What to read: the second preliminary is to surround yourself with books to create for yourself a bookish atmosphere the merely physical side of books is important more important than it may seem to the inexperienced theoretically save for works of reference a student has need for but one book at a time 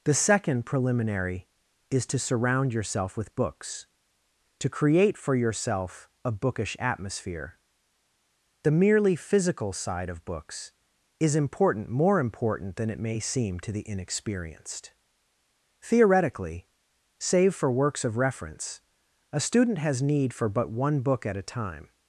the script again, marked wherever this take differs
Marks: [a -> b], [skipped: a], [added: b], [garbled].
the second preliminary is to surround yourself with books to create for yourself a bookish atmosphere the merely physical side of books is important more important than it may seem to the inexperienced theoretically save for works of reference a student has need for but one book at a time